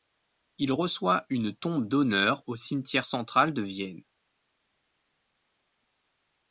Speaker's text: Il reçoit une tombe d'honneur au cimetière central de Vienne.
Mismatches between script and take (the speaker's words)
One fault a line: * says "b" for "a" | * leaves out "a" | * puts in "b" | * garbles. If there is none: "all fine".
all fine